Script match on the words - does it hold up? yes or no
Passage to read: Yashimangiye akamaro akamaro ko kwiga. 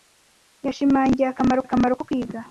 yes